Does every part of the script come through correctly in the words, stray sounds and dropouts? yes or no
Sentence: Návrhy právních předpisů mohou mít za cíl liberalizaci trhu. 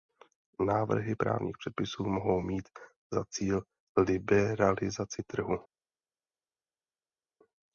yes